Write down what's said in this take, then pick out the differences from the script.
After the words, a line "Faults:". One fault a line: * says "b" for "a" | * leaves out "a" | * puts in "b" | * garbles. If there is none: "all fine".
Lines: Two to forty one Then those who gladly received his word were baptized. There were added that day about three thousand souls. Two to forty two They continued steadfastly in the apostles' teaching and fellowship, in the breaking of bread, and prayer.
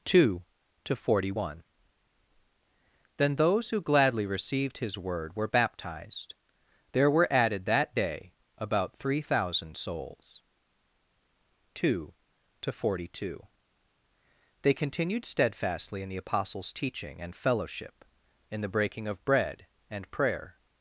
Two to forty one Then those who gladly received his word were baptized. There were added that day about three thousand souls. Two to forty two They continued steadfastly in the apostles' teaching and fellowship, in the breaking of bread, and prayer.
Faults:
all fine